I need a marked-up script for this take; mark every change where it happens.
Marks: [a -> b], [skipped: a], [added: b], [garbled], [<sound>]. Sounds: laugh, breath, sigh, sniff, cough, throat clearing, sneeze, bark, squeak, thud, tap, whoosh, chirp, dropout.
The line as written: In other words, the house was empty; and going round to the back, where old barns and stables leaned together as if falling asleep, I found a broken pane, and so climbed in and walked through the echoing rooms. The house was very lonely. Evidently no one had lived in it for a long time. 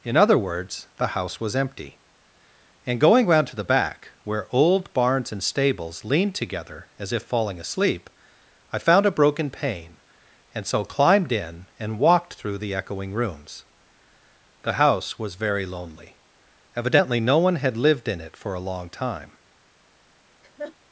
In other words, the house was empty; and going round to the back, where old barns and stables leaned together as if falling asleep, I found a broken pane, and so climbed in and walked through the echoing rooms. The house was very lonely. Evidently no one had lived in it for a long time. [laugh]